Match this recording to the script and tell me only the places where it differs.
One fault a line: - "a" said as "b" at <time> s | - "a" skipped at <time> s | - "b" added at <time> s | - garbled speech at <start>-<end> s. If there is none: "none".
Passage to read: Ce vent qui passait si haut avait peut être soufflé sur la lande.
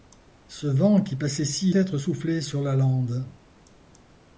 - "haut avait peut" skipped at 1.8 s